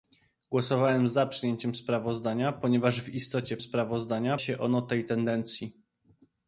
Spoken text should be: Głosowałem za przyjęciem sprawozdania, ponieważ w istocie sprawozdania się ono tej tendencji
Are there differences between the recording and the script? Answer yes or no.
no